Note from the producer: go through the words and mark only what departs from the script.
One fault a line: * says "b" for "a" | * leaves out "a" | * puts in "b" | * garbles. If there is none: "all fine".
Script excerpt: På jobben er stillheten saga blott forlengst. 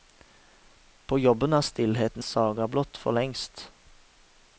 all fine